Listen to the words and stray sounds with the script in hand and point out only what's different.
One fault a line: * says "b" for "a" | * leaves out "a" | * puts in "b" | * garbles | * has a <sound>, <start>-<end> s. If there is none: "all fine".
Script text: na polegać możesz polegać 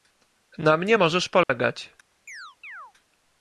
* says "mnie" for "polegać"
* has a dropout, 1.4-1.5 s
* has a chirp, 2.3-2.9 s